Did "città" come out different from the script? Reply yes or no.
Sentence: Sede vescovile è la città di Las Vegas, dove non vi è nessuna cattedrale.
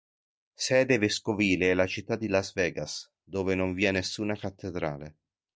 no